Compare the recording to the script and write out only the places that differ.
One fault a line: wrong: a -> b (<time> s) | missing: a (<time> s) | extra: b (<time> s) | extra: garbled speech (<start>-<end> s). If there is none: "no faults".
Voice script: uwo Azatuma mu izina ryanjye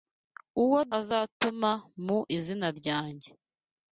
no faults